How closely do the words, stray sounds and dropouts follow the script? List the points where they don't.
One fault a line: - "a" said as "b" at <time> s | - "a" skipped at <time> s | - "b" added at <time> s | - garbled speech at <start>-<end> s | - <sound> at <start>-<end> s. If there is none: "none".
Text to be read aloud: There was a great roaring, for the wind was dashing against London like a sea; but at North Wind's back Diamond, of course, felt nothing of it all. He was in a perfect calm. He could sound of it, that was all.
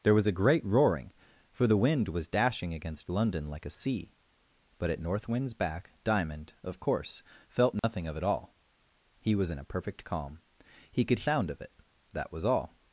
- dropout at 7.8-7.8 s